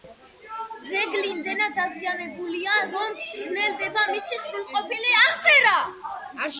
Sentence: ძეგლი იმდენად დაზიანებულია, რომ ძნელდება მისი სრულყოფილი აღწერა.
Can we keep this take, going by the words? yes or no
yes